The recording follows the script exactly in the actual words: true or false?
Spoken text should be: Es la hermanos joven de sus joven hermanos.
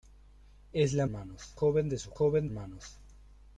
true